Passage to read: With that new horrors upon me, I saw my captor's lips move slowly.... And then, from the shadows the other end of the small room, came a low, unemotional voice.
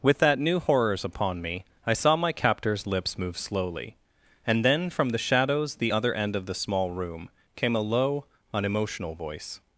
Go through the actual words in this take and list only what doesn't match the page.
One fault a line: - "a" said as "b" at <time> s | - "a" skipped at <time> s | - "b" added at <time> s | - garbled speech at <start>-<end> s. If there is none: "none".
none